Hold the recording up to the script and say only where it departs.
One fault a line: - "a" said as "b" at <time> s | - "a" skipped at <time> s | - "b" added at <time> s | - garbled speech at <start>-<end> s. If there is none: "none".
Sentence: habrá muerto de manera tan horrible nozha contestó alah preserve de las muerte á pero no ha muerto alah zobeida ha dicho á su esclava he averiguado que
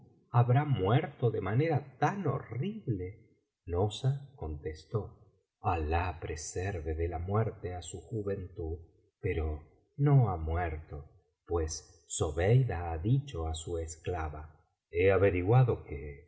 - "las" said as "la" at 7.1 s
- "su juventud" added at 7.8 s
- "alah" said as "pues" at 11.5 s